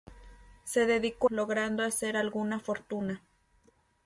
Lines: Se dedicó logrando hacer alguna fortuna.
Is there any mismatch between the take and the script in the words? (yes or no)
no